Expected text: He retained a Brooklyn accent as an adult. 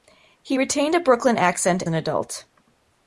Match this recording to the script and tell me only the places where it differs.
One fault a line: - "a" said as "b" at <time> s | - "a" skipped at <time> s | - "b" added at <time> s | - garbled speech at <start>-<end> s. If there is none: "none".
- "as" skipped at 1.8 s